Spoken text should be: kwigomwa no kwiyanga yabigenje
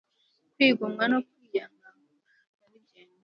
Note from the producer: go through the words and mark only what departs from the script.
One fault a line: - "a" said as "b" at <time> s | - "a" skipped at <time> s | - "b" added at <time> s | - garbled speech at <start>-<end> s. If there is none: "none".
none